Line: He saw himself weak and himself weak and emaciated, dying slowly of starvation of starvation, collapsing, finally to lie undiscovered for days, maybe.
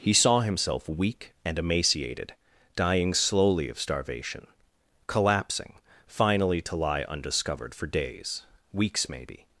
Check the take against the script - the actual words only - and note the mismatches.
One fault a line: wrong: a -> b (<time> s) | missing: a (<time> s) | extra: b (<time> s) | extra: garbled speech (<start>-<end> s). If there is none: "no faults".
missing: himself weak and (1.6 s)
missing: of starvation (4.5 s)
extra: weeks (8.7 s)